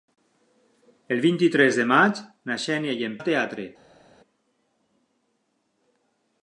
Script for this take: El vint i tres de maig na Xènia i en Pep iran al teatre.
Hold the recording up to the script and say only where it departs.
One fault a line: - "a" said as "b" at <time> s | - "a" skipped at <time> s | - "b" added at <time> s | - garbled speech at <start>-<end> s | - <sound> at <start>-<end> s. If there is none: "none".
- "Pep iran" skipped at 3.2 s